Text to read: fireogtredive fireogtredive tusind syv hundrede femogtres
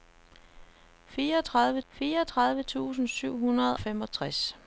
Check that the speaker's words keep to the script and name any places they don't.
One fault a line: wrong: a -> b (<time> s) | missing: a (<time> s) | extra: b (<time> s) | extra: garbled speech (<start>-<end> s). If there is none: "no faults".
no faults